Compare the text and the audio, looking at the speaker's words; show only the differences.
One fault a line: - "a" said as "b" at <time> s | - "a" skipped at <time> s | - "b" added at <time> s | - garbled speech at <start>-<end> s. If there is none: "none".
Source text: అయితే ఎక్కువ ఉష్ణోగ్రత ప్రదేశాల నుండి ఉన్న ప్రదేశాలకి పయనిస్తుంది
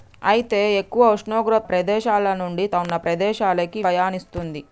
none